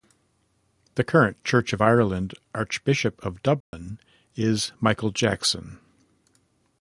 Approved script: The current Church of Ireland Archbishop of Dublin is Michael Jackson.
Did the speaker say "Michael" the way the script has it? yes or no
yes